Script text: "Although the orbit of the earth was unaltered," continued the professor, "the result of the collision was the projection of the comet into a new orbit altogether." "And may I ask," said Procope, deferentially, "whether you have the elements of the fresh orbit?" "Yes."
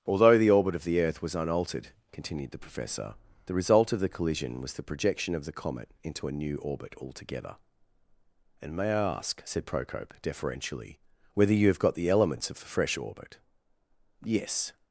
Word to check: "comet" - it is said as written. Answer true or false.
true